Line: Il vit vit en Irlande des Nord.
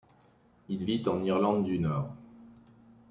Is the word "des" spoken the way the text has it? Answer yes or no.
no